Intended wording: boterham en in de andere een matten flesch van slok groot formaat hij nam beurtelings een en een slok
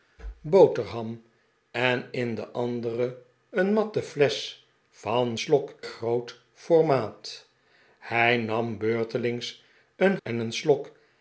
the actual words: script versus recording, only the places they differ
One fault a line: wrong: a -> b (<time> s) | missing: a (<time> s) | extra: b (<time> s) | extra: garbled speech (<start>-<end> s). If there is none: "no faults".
no faults